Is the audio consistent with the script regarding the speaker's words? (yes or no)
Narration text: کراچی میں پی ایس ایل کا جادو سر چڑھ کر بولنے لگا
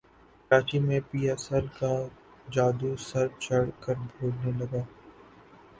yes